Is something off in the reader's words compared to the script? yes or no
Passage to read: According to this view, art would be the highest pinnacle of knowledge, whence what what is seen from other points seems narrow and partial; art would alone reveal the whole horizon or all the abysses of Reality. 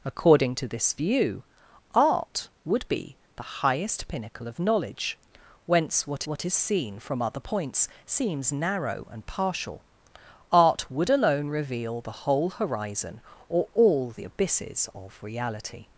no